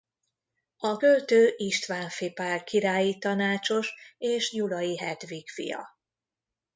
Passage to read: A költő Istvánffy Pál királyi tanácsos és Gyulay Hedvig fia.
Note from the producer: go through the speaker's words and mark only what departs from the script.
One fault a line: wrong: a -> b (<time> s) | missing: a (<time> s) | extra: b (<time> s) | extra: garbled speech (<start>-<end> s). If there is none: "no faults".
no faults